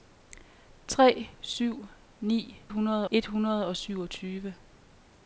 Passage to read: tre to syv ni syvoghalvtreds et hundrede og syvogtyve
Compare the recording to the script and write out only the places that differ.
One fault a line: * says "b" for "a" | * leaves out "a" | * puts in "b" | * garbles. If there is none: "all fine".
* leaves out "to"
* says "hundrede" for "syvoghalvtreds"